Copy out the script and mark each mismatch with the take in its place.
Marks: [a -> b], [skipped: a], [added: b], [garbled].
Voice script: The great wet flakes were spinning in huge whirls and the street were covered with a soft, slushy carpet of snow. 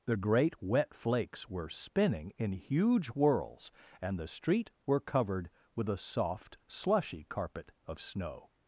The great wet flakes were spinning in huge whirls and the street were covered with a soft, slushy carpet of snow.